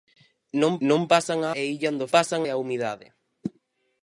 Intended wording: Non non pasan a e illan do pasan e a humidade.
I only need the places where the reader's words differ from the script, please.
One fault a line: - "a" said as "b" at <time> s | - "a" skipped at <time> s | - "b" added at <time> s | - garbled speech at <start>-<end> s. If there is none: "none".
none